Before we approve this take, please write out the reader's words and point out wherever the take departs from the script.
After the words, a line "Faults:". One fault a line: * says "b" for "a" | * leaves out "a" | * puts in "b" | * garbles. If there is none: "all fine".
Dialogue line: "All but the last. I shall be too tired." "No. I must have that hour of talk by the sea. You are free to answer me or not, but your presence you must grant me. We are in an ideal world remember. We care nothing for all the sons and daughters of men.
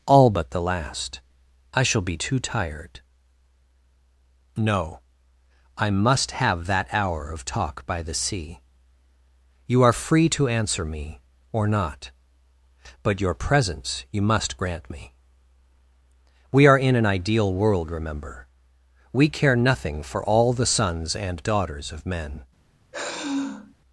"All but the last. I shall be too tired." "No. I must have that hour of talk by the sea. You are free to answer me or not, but your presence you must grant me. We are in an ideal world remember. We care nothing for all the sons and daughters of men.
Faults:
all fine